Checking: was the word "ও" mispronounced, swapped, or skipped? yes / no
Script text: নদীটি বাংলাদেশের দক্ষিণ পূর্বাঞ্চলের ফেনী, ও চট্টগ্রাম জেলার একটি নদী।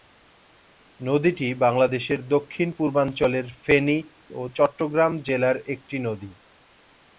no